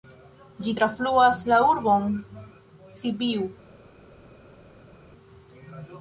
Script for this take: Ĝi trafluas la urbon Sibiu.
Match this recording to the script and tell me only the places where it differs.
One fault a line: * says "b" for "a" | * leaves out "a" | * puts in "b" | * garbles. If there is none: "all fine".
all fine